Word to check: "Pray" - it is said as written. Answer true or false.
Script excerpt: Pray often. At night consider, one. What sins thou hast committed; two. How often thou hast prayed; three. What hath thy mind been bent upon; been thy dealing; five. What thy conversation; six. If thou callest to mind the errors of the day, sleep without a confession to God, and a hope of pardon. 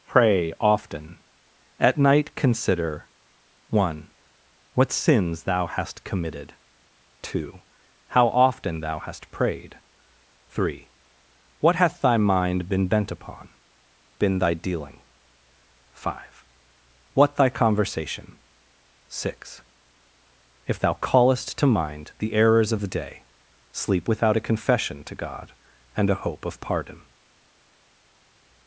true